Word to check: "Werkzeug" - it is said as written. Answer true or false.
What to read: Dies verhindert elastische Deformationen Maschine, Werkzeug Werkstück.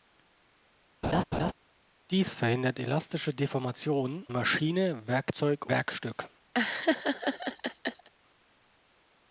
true